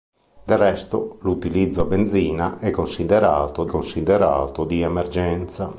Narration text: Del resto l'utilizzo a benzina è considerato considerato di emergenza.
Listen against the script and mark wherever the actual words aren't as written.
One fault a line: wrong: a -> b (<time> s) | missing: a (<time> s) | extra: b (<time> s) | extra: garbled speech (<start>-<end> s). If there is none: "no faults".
no faults